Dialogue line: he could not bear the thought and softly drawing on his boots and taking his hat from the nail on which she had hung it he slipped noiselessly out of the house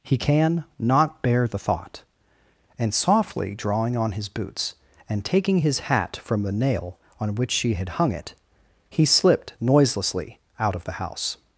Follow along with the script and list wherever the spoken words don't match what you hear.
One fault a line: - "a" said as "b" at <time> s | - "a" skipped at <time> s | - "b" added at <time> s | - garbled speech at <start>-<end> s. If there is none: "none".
- "could" said as "can" at 0.2 s